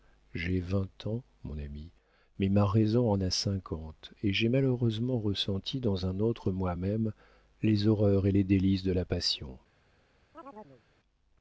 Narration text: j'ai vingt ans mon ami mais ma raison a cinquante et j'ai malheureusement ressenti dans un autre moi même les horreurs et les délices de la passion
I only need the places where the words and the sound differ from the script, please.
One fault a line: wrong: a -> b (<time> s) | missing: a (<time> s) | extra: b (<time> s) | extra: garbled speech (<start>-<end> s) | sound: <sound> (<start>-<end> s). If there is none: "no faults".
extra: en (3.1 s)
sound: chirp (10.3-10.8 s)